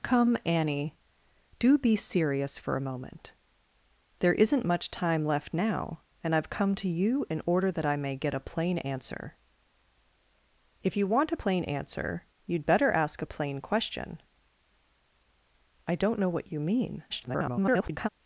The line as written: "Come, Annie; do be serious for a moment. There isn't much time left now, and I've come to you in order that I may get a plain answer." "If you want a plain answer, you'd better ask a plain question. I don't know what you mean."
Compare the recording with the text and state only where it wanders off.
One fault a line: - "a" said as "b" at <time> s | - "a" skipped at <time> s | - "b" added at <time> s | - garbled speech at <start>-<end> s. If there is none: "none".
- garbled speech at 17.1-18.1 s